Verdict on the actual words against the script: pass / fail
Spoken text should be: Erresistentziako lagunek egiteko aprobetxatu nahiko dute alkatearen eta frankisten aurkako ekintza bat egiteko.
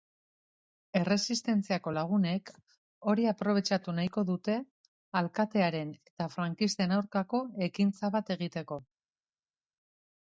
fail